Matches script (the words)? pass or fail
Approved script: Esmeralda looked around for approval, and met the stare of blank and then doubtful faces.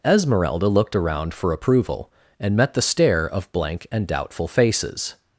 fail